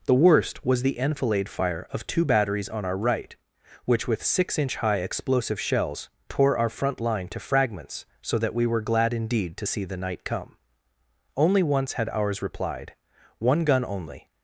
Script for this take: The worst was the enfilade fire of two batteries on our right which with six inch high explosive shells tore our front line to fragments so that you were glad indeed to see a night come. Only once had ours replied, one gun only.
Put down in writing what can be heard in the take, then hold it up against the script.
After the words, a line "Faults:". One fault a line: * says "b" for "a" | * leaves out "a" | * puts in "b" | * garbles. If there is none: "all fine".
The worst was the enfilade fire of two batteries on our right which with six inch high explosive shells tore our front line to fragments so that we were glad indeed to see the night come. Only once had ours replied, one gun only.
Faults:
* says "we" for "you"
* says "the" for "a"